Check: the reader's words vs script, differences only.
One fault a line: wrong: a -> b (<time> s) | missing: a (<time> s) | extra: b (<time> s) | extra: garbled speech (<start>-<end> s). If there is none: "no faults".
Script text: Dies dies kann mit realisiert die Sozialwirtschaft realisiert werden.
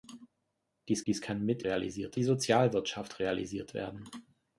no faults